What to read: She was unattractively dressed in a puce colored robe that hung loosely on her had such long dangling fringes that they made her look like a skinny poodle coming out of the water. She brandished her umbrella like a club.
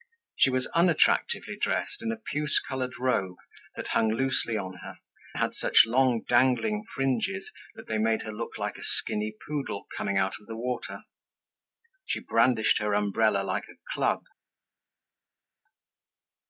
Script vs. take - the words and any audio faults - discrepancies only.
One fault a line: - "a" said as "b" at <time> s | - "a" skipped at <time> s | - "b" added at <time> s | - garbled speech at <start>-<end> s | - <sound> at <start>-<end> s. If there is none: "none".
none